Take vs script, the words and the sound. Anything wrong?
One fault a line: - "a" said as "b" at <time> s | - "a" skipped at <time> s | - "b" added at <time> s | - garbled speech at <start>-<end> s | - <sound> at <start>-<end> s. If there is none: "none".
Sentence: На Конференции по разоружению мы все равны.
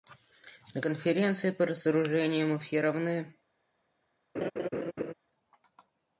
- laugh at 4.3-5.1 s